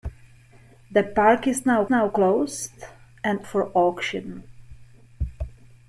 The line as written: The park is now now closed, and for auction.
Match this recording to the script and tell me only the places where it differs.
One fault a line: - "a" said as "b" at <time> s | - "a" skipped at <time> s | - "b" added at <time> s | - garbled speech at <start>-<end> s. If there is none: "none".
none